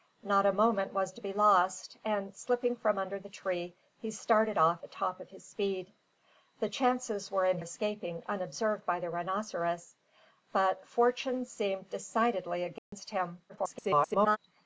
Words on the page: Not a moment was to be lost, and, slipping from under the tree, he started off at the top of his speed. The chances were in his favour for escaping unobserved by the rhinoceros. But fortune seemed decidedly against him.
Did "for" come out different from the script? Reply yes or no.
yes